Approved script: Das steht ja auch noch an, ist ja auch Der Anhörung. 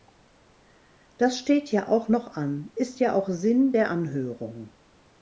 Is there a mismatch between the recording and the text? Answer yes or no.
yes